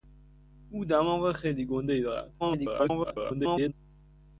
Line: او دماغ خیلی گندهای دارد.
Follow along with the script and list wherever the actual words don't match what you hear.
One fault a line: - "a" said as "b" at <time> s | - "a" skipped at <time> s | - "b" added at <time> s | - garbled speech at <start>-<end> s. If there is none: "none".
- garbled speech at 2.4-3.7 s